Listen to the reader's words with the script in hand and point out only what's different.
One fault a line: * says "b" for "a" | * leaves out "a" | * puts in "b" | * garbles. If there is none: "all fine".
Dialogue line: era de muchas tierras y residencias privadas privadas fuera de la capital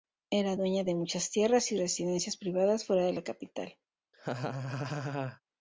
* puts in "dueña"
* leaves out "privadas"